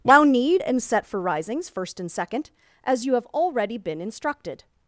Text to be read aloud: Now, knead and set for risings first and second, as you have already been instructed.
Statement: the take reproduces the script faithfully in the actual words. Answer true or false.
true